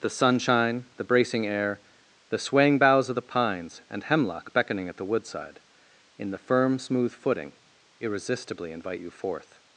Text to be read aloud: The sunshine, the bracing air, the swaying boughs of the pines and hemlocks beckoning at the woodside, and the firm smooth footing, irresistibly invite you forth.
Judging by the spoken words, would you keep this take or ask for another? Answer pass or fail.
fail